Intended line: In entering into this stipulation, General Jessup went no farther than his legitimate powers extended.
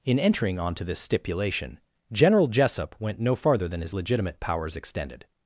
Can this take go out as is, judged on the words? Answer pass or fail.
fail